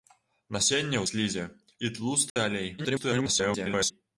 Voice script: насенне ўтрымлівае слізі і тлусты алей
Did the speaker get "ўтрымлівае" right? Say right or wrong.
wrong